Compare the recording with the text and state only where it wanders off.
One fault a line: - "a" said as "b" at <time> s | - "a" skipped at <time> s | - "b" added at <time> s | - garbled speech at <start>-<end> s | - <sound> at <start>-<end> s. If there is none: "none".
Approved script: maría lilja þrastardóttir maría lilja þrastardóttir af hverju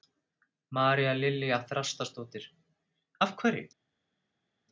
- "maría lilja þrastardóttir" skipped at 2.5 s